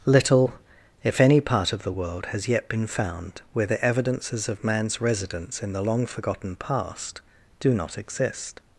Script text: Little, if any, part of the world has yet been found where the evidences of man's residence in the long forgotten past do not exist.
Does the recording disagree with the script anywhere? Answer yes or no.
no